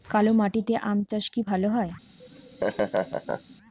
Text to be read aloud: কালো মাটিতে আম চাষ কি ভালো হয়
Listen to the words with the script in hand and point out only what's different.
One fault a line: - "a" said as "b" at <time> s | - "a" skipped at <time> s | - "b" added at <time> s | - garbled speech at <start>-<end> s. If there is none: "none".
none